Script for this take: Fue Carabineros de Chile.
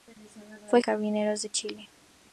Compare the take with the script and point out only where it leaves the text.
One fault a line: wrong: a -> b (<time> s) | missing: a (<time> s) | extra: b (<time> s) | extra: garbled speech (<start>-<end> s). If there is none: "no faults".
no faults